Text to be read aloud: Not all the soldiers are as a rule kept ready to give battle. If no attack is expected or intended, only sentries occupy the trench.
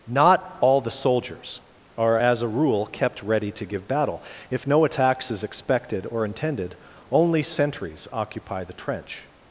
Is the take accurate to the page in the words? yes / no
no